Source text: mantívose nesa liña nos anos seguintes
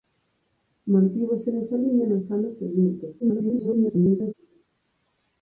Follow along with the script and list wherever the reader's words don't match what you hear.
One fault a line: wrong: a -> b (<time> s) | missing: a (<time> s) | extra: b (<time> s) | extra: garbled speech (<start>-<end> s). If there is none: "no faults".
extra: garbled speech (3.2-4.3 s)